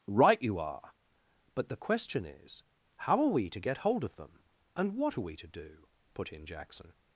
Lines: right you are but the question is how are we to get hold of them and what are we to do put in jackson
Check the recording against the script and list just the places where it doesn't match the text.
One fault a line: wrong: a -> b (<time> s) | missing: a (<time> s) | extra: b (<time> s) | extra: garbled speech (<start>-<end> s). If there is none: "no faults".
no faults